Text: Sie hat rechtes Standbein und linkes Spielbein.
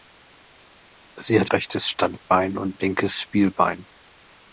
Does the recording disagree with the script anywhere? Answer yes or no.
no